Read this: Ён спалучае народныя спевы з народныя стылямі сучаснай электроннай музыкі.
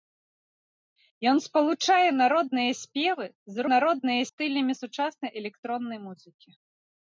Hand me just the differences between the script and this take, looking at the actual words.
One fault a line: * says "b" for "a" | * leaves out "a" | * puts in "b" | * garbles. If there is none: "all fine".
all fine